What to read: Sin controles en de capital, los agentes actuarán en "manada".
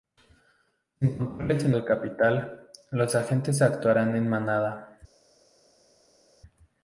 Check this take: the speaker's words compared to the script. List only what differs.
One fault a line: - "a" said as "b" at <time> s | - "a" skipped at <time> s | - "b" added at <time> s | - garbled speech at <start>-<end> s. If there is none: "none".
none